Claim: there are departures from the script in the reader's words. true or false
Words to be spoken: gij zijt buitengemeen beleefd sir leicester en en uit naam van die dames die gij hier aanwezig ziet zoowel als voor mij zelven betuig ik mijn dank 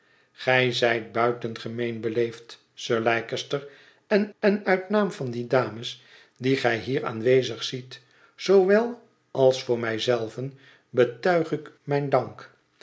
false